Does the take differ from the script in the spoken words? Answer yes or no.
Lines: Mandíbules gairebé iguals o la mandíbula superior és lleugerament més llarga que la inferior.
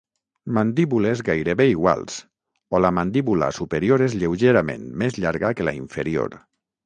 no